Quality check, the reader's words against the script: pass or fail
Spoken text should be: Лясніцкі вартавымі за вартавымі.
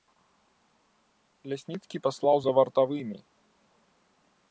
fail